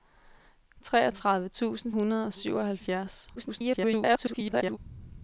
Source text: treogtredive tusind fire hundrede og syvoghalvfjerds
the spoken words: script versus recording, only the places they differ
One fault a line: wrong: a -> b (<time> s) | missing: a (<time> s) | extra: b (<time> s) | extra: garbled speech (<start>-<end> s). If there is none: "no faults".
missing: fire (1.9 s)
extra: garbled speech (3.4-4.8 s)